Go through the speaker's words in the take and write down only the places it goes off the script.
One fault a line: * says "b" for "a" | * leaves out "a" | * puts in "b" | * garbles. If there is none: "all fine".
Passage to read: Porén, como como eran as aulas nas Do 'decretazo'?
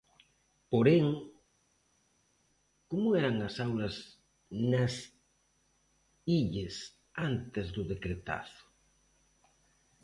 * leaves out "como"
* puts in "Illes antes"